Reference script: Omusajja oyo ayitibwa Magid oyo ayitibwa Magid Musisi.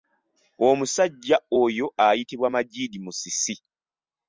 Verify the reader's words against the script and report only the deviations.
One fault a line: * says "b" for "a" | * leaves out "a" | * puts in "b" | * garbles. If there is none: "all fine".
* leaves out "oyo ayitibwa Magid"